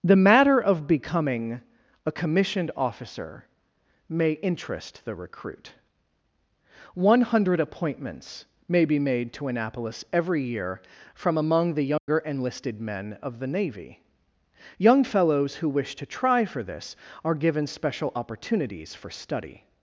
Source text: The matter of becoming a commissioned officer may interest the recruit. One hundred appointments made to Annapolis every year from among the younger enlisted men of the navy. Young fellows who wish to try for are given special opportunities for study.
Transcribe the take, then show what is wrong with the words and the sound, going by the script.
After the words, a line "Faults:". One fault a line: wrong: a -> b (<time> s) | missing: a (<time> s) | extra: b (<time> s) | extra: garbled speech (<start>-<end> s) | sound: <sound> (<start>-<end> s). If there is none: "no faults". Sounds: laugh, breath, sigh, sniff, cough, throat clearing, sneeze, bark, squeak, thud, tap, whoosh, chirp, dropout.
The matter of becoming a commissioned officer may interest the recruit. One hundred appointments may be made to Annapolis every year from among the younger enlisted men of the navy. Young fellows who wish to try for this are given special opportunities for study.
Faults:
extra: may be (8.7 s)
sound: dropout (12.0-12.1 s)
extra: this (16.6 s)